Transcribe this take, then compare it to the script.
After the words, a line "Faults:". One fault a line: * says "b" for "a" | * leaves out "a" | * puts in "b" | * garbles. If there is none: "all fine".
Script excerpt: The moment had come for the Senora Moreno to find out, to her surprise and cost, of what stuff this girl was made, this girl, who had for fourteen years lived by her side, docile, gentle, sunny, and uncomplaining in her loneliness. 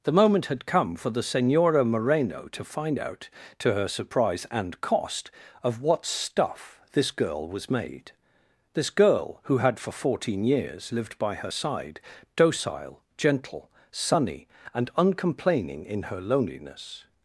The moment had come for the Senora Moreno to find out, to her surprise and cost, of what stuff this girl was made, this girl, who had for fourteen years lived by her side, docile, gentle, sunny, and uncomplaining in her loneliness.
Faults:
all fine